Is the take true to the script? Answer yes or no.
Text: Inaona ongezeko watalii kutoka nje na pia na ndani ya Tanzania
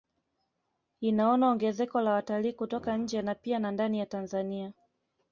no